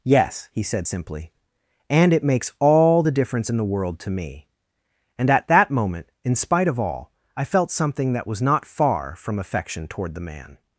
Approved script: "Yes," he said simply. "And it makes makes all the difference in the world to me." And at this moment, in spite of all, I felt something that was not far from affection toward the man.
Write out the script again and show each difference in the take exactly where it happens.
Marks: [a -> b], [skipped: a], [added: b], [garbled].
"Yes," he said simply. "And it makes [skipped: makes] all the difference in the world to me." And at [this -> that] moment, in spite of all, I felt something that was not far from affection toward the man.